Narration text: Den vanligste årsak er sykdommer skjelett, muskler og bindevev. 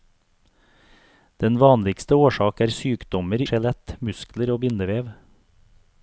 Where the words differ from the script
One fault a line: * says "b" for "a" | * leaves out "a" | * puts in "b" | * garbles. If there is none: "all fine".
all fine